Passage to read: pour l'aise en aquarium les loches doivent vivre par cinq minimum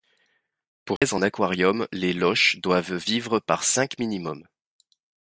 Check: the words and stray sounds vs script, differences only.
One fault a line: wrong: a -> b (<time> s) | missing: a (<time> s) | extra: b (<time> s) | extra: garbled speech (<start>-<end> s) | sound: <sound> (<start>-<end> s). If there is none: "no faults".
sound: dropout (1.0-1.0 s)